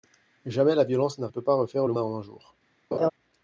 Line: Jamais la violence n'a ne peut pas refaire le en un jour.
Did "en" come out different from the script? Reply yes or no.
no